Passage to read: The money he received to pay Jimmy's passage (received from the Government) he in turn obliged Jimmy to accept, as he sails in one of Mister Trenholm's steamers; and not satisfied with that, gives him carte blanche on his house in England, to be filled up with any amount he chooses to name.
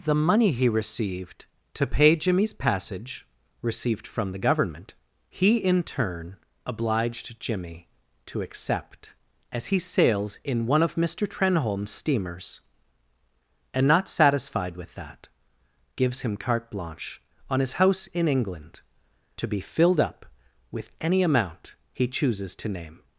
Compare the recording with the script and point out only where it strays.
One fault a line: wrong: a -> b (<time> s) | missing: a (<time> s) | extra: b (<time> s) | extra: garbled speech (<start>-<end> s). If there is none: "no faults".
no faults